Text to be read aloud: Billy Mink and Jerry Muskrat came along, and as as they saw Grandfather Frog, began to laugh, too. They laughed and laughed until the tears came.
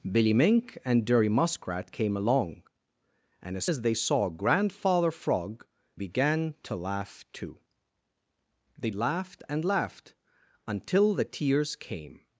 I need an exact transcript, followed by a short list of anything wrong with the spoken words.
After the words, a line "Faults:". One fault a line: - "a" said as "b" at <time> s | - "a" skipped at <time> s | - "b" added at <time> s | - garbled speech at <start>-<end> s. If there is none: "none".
Billy Mink and Jerry Muskrat came along, and as as they saw Grandfather Frog, began to laugh, too. They laughed and laughed until the tears came.
Faults:
none